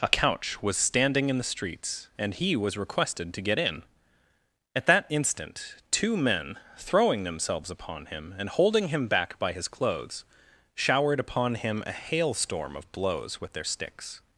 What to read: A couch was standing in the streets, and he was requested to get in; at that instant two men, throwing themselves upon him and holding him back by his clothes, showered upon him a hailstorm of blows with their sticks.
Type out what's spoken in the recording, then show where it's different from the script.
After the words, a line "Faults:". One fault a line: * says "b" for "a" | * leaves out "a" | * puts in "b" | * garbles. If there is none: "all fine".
A couch was standing in the streets, and he was requested to get in; at that instant two men, throwing themselves upon him and holding him back by his clothes, showered upon him a hailstorm of blows with their sticks.
Faults:
all fine